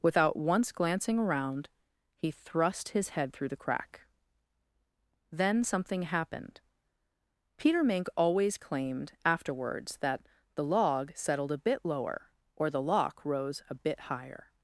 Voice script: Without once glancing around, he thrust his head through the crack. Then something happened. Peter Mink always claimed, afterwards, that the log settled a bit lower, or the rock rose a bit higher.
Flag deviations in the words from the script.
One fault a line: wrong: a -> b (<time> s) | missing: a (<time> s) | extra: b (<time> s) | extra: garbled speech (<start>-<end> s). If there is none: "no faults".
wrong: rock -> lock (12.8 s)